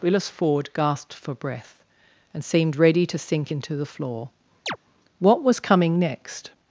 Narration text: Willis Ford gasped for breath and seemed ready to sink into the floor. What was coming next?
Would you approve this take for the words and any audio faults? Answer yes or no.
no